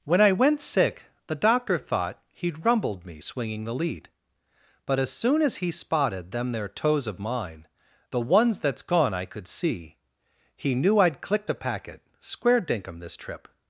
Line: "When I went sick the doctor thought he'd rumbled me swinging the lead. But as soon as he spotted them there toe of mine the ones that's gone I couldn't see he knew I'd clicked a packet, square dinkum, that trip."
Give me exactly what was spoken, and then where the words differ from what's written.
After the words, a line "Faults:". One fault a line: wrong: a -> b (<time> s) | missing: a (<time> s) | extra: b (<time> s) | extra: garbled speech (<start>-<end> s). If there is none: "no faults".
"When I went sick the doctor thought he'd rumbled me swinging the lead. But as soon as he spotted them there toes of mine the ones that's gone I could see he knew I'd clicked a packet, square dinkum, this trip."
Faults:
wrong: toe -> toes (6.7 s)
wrong: couldn't -> could (9.2 s)
wrong: that -> this (13.0 s)